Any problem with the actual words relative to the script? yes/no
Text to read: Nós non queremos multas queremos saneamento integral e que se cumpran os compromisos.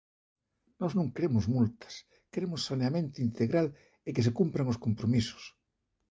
no